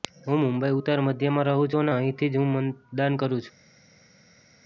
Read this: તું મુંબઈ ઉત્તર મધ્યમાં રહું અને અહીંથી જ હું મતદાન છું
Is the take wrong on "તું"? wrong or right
wrong